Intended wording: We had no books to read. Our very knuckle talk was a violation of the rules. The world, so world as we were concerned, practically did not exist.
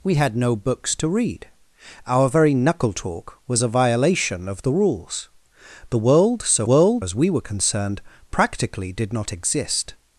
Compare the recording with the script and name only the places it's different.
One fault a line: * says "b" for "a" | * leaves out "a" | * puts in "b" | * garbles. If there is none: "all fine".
all fine